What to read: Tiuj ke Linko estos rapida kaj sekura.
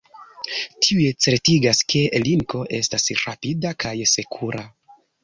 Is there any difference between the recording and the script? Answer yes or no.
yes